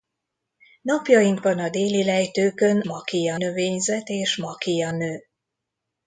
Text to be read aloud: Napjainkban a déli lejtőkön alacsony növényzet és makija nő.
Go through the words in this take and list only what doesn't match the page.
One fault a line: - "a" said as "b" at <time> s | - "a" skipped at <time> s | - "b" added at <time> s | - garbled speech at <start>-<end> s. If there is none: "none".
- "alacsony" said as "makija" at 2.8 s